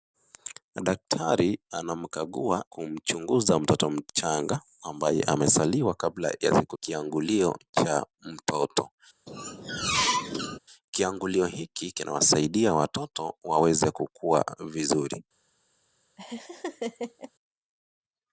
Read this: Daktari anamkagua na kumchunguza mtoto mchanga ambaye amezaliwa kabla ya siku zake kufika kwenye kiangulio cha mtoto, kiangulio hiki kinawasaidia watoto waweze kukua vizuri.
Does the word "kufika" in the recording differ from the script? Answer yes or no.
yes